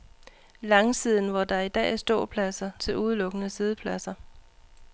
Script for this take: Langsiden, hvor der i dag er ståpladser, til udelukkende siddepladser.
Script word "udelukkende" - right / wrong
right